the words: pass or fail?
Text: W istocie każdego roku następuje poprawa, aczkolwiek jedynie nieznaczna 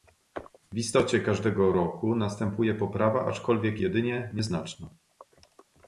pass